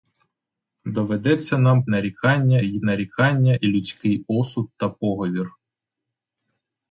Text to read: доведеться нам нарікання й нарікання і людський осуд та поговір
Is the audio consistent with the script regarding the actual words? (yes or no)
yes